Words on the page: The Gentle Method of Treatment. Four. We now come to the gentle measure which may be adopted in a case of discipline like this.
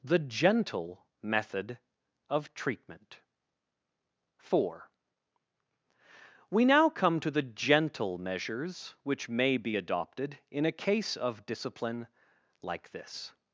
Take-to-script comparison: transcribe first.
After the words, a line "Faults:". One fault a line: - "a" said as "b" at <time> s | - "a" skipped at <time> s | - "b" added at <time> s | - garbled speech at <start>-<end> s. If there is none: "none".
The Gentle Method of Treatment. Four. We now come to the gentle measures which may be adopted in a case of discipline like this.
Faults:
- "measure" said as "measures" at 8.2 s